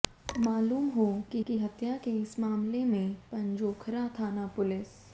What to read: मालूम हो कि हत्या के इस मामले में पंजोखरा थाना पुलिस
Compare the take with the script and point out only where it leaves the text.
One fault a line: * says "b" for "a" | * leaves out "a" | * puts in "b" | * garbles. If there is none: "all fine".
* puts in "कि"